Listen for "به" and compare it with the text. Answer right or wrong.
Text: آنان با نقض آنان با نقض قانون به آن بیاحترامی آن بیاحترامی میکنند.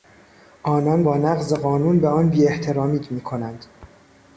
right